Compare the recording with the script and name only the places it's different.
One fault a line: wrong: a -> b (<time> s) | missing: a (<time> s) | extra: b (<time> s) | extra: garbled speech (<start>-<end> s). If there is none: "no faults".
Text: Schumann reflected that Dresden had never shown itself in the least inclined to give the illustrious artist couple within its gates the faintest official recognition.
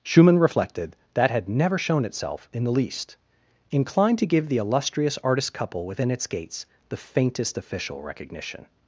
missing: Dresden (1.3 s)